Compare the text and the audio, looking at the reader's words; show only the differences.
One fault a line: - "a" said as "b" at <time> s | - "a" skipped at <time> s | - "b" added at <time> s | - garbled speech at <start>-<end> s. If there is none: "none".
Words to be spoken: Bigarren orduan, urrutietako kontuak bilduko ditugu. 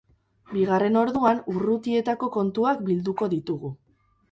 none